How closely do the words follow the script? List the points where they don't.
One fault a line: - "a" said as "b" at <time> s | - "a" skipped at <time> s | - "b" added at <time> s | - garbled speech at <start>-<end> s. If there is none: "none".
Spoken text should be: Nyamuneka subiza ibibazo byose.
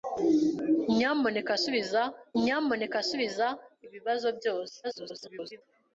- "nyamuneka subiza" added at 2.4 s
- garbled speech at 4.8-5.6 s